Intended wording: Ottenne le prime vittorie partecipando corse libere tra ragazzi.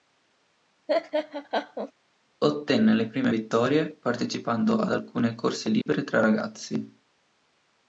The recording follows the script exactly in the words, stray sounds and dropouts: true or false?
false